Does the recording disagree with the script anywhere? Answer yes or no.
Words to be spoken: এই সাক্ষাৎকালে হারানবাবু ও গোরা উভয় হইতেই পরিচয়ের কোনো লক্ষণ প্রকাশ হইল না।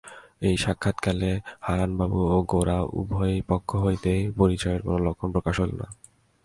yes